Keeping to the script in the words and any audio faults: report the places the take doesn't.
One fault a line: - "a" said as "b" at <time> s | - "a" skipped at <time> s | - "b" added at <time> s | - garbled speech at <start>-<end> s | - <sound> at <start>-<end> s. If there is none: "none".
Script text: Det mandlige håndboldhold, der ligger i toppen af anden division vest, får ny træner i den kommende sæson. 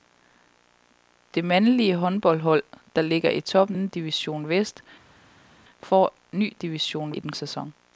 - "af" skipped at 3.8 s
- "træner" said as "division" at 6.5 s
- "kommende" skipped at 7.3 s